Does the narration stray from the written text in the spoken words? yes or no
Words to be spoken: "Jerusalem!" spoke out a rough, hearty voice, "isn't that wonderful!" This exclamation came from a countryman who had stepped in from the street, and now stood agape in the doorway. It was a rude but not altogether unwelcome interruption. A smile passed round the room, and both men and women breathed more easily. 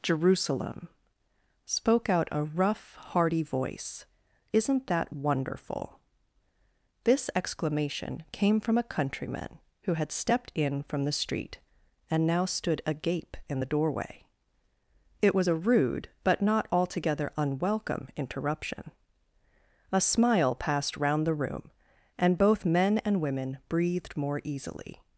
no